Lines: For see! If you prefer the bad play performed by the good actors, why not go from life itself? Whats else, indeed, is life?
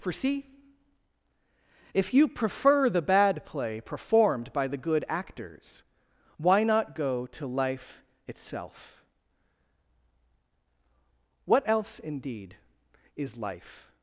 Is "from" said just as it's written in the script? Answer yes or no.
no